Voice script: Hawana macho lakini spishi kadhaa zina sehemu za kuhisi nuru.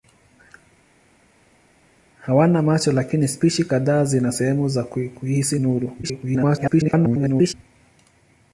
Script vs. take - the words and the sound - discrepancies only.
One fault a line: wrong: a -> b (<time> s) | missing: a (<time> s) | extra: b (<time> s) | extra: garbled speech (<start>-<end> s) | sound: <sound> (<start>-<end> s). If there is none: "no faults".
extra: garbled speech (6.0-7.5 s)